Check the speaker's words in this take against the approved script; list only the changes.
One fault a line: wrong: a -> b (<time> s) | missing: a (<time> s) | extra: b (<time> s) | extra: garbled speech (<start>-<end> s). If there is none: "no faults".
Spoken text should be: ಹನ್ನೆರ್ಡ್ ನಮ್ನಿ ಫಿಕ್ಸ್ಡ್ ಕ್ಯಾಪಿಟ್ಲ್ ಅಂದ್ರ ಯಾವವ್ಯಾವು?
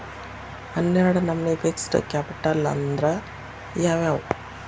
no faults